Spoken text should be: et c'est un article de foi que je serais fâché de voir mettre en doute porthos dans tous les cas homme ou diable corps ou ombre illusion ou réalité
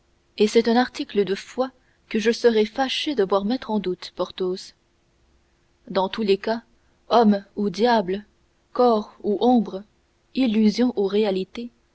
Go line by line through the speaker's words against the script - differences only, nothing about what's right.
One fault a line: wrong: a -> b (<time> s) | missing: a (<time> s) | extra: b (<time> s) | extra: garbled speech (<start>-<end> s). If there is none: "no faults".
no faults